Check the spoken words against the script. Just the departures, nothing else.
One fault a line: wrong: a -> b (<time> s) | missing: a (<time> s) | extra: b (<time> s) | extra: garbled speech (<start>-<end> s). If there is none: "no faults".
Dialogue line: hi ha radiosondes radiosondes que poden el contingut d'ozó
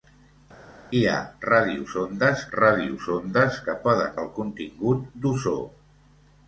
no faults